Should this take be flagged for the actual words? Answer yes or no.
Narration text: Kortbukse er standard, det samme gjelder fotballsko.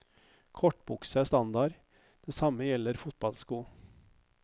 no